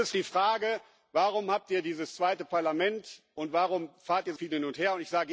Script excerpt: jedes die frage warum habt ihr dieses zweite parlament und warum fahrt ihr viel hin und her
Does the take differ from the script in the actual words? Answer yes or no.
no